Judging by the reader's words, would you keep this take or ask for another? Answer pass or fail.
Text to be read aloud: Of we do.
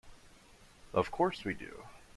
fail